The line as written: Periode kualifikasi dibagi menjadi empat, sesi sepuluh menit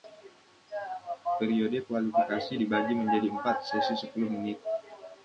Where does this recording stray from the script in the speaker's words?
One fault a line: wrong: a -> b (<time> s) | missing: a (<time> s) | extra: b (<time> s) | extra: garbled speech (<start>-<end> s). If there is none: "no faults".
no faults